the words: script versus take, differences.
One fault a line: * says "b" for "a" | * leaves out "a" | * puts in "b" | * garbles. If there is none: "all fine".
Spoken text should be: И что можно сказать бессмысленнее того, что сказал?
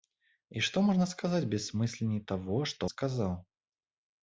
all fine